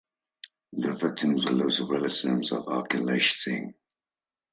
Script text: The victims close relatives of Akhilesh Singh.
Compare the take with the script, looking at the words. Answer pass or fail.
pass